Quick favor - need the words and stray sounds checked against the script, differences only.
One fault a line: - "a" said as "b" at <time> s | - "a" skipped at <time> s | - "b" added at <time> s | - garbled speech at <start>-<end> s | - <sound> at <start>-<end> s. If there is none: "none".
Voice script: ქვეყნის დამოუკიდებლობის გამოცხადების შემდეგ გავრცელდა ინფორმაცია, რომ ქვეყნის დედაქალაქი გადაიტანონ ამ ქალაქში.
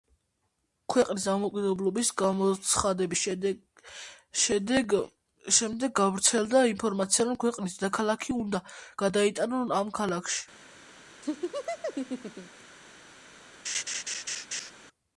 - "უნდა" added at 8.4 s
- laugh at 11.2-12.6 s
- laugh at 13.6-14.7 s